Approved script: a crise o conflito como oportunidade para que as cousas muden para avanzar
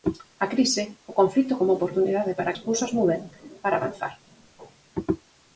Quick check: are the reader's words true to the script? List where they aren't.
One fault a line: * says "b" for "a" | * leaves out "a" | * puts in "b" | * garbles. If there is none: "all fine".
* leaves out "que"